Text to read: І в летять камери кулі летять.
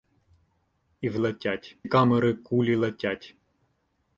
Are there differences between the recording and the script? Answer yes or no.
no